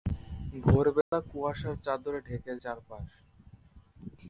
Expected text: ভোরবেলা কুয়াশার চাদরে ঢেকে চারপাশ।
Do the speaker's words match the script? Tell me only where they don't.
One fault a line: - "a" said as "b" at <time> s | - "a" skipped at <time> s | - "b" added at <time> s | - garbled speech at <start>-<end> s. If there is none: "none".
none